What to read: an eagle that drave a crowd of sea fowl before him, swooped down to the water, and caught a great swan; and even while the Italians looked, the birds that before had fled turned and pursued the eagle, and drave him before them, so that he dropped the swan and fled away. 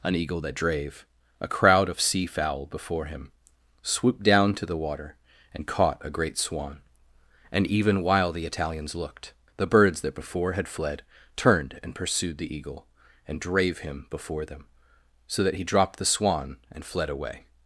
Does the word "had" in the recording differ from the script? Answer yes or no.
no